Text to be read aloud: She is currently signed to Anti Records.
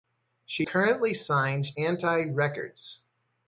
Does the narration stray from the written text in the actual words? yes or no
yes